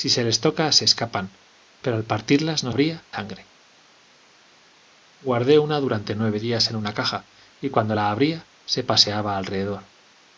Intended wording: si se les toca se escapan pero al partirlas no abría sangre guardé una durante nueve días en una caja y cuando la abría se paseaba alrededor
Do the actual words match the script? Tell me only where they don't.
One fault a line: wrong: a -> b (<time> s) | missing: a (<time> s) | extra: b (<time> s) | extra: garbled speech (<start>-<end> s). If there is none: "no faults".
no faults